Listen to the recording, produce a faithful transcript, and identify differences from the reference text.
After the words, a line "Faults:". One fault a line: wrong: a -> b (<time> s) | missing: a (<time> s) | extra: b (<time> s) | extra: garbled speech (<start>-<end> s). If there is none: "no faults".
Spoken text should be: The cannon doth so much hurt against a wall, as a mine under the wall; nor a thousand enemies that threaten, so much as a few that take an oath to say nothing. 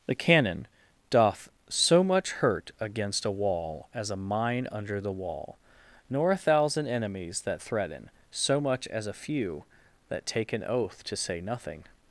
The cannon doth so much hurt against a wall, as a mine under the wall; nor a thousand enemies that threaten, so much as a few that take an oath to say nothing.
Faults:
no faults